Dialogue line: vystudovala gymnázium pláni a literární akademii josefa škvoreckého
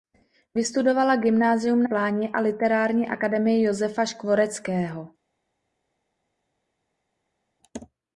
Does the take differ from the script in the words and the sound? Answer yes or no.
no